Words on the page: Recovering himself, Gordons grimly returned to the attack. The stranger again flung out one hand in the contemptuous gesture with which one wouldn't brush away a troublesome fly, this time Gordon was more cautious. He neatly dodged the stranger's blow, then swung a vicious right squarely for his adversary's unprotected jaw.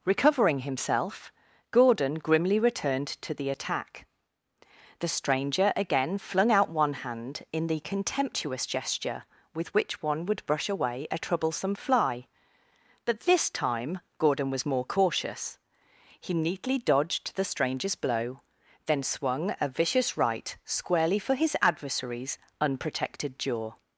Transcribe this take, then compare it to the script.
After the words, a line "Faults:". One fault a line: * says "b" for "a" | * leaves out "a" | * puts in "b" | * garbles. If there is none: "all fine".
Recovering himself, Gordon grimly returned to the attack. The stranger again flung out one hand in the contemptuous gesture with which one would brush away a troublesome fly, but this time Gordon was more cautious. He neatly dodged the stranger's blow, then swung a vicious right squarely for his adversary's unprotected jaw.
Faults:
* says "Gordon" for "Gordons"
* says "would" for "wouldn't"
* puts in "but"